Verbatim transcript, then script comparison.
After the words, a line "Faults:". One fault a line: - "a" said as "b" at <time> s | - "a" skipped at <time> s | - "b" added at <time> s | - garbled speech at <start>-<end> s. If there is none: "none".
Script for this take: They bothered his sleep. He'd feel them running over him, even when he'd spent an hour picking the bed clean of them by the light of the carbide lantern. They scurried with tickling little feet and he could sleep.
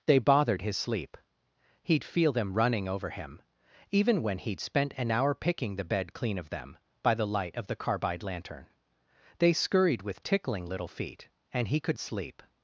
They bothered his sleep. He'd feel them running over him, even when he'd spent an hour picking the bed clean of them by the light of the carbide lantern. They scurried with tickling little feet and he could sleep.
Faults:
none